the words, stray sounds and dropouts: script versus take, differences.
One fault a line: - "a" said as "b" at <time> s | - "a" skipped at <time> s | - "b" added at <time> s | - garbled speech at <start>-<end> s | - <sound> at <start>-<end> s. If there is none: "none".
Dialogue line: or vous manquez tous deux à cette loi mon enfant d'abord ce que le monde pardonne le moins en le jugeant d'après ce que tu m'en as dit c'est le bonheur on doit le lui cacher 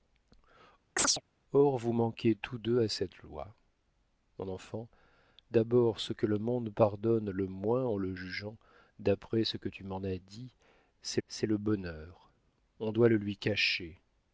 - chirp at 1.0-1.2 s
- "c'est" added at 11.3 s